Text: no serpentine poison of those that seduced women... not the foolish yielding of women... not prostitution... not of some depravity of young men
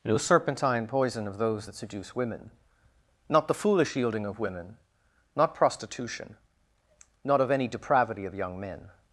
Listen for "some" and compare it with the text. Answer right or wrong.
wrong